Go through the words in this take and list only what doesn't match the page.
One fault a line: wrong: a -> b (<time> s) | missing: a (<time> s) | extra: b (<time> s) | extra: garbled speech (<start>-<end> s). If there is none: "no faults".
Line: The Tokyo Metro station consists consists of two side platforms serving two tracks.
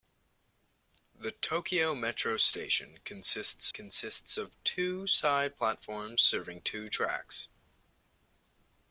no faults